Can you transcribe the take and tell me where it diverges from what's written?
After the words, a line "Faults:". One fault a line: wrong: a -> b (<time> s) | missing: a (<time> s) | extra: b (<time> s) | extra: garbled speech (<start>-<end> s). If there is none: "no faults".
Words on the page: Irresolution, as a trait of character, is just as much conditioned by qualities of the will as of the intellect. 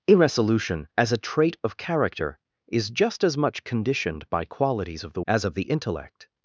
Irresolution, as a trait of character, is just as much conditioned by qualities of the as of the intellect.
Faults:
missing: will (5.2 s)